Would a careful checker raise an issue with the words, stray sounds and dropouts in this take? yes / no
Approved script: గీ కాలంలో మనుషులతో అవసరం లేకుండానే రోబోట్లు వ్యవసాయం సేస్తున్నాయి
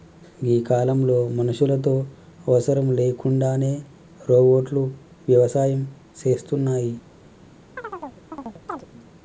yes